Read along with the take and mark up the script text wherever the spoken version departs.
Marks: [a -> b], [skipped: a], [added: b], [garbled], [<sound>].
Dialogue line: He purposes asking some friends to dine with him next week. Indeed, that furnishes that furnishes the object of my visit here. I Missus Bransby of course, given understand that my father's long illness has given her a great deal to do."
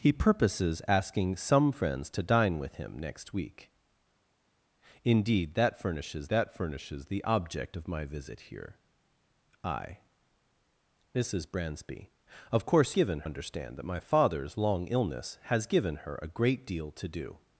He purposes asking some friends to dine with him next week. Indeed, that furnishes that furnishes the object of my visit here. I Missus Bransby of course, given understand that my father's long illness has given her a great deal to do."